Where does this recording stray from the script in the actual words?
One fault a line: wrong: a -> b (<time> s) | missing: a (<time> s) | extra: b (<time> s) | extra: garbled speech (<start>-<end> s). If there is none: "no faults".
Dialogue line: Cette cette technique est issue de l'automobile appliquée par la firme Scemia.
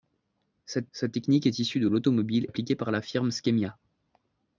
no faults